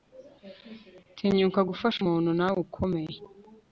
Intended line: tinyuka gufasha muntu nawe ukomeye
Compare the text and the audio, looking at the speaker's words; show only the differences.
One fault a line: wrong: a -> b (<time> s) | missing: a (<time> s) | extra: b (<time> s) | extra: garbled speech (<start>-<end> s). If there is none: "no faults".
no faults